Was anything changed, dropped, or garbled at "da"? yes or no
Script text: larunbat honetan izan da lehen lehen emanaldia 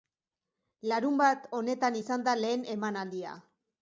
no